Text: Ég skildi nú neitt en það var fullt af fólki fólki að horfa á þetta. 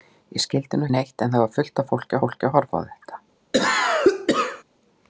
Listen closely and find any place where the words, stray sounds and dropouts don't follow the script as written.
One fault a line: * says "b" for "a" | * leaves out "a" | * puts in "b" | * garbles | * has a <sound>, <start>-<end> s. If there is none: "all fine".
* has a cough, 3.5-4.6 s